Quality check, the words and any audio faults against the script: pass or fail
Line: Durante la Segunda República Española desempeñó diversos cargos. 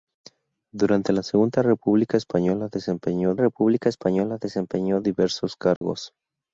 fail